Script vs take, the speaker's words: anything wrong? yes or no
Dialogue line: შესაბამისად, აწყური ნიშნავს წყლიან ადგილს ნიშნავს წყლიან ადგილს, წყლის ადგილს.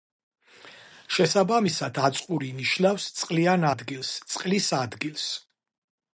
yes